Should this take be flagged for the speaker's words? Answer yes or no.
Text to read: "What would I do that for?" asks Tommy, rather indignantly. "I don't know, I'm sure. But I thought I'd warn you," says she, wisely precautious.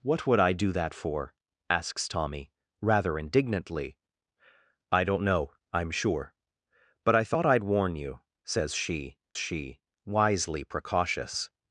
yes